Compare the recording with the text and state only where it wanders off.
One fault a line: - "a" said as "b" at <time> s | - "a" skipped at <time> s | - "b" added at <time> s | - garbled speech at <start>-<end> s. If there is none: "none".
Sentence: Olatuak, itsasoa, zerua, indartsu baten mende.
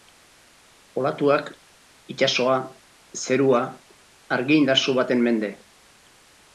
- "argi" added at 4.4 s